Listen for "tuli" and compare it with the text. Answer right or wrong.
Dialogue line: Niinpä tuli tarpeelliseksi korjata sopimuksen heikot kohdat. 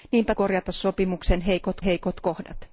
wrong